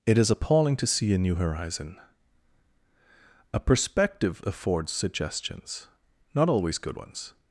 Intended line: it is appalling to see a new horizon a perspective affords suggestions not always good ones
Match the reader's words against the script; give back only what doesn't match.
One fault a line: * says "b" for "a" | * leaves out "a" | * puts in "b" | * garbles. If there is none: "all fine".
all fine